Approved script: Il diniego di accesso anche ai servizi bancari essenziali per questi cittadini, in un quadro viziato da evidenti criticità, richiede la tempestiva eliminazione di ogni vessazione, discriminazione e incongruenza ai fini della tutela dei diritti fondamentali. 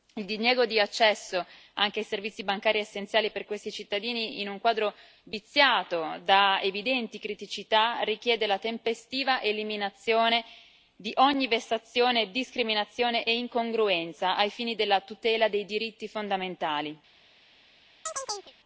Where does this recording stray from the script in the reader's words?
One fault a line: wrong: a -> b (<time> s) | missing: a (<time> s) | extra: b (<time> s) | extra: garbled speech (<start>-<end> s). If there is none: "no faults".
no faults